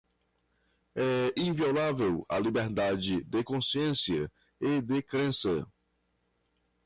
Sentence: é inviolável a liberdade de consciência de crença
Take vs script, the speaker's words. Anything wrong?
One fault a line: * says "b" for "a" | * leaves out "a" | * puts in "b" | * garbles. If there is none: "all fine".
* puts in "e"